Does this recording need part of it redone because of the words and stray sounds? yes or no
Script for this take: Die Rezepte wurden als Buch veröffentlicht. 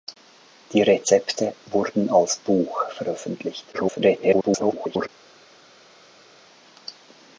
yes